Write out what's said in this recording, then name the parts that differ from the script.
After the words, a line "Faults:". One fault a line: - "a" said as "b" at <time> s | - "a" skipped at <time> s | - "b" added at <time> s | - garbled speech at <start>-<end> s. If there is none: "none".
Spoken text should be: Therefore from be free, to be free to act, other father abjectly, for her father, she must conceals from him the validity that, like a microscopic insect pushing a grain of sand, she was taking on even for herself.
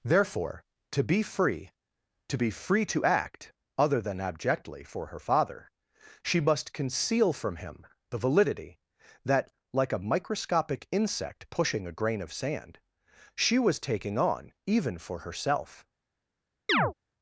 Therefore to be free, to be free to act, other than abjectly, for her father, she must conceal from him the validity that, like a microscopic insect pushing a grain of sand, she was taking on even for herself.
Faults:
- "from" said as "to" at 0.9 s
- "father" said as "than" at 4.0 s
- "conceals" said as "conceal" at 6.7 s